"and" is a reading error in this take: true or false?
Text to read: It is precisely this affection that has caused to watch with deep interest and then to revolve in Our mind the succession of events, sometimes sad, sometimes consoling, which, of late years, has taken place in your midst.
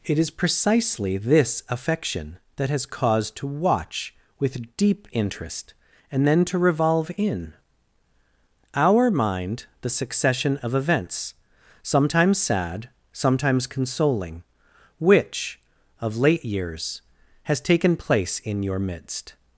false